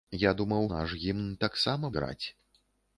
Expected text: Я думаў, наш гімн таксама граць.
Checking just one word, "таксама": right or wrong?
right